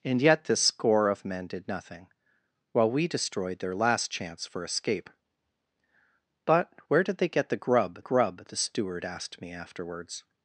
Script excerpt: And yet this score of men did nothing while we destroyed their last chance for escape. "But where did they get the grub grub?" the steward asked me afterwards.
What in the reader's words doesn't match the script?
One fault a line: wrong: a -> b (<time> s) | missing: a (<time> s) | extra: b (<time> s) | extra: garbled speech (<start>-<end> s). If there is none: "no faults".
no faults